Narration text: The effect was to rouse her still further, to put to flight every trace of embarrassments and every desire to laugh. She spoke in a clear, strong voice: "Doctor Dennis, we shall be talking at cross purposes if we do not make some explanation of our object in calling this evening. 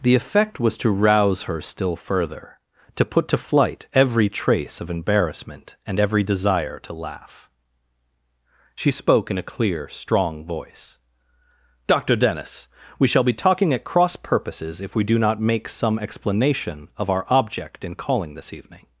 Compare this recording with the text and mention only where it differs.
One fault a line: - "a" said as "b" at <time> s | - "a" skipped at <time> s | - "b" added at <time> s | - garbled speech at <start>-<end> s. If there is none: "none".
- "embarrassments" said as "embarrassment" at 4.9 s